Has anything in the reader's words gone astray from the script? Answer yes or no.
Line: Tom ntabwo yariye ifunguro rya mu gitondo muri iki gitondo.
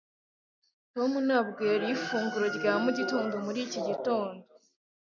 no